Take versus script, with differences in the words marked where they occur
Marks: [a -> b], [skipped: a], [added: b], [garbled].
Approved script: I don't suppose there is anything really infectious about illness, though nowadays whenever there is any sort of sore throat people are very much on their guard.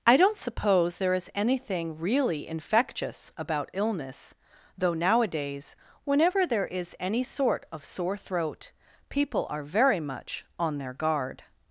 I don't suppose there is anything really infectious about illness, though nowadays whenever there is any sort of sore throat people are very much on their guard.